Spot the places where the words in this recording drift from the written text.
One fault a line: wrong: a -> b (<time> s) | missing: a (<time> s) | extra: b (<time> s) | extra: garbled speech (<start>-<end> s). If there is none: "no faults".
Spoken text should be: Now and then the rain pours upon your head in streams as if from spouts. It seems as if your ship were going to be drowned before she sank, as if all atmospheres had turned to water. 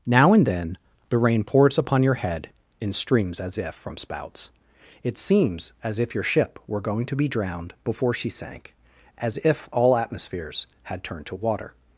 no faults